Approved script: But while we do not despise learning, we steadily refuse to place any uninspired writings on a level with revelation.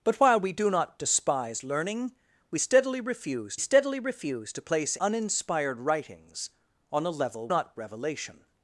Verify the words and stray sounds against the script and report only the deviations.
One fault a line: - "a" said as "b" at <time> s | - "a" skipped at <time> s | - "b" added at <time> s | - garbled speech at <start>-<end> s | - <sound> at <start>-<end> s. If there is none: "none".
- "steadily refuse" added at 3.6 s
- "any" skipped at 5.0 s
- "with" said as "not" at 7.5 s